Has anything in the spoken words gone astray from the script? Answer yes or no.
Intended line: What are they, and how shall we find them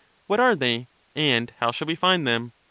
no